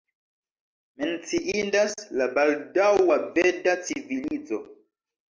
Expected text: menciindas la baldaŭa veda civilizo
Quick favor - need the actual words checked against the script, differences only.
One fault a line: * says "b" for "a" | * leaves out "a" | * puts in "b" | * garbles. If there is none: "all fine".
all fine